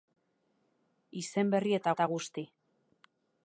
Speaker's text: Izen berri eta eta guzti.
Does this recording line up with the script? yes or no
yes